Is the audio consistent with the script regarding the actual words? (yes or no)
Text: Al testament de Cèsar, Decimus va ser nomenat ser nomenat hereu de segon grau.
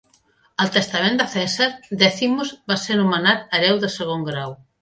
no